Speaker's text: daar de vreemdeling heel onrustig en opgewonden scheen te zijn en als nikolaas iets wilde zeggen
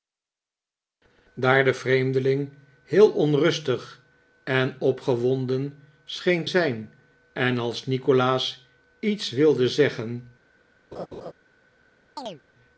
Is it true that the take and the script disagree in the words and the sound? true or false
true